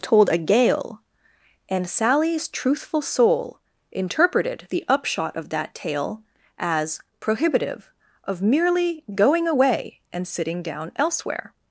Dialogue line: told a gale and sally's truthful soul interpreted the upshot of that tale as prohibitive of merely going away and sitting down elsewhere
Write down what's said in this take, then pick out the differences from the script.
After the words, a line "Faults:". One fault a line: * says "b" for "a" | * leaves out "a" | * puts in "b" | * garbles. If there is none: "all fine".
told a gale and sally's truthful soul interpreted the upshot of that tale as prohibitive of merely going away and sitting down elsewhere
Faults:
all fine